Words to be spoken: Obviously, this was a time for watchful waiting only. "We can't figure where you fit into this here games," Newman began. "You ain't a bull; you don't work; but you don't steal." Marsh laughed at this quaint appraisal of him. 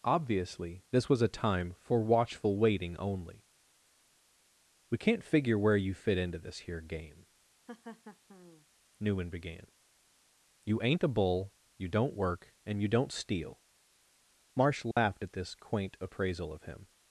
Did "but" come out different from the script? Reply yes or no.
yes